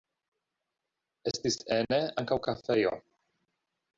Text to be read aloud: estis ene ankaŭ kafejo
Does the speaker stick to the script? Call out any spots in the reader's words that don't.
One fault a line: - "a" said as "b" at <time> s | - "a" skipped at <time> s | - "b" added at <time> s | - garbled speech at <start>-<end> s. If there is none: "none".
none